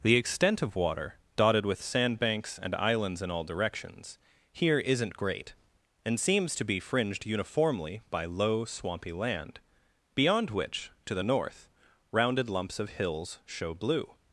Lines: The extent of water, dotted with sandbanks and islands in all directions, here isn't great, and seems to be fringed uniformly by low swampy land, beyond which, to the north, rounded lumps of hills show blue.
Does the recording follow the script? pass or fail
pass